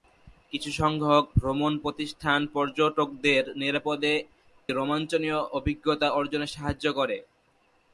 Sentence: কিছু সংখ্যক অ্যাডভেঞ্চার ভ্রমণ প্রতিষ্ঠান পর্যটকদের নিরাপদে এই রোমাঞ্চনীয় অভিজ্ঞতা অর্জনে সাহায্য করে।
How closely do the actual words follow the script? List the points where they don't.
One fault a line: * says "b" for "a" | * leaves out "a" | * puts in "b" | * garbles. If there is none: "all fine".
* leaves out "অ্যাডভেঞ্চার"
* leaves out "এই"